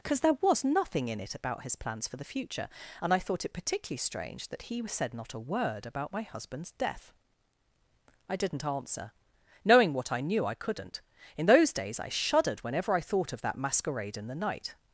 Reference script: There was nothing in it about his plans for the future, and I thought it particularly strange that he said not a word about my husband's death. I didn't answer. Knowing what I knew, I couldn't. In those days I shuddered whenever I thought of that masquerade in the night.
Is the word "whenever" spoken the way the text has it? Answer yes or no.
yes